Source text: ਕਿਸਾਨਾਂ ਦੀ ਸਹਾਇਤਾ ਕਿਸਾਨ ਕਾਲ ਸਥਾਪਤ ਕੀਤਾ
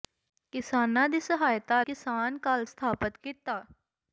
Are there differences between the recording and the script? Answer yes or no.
no